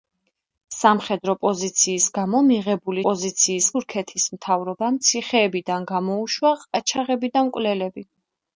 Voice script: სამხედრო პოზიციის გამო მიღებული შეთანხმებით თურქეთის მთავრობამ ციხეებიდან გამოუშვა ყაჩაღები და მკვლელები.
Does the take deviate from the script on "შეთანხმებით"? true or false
true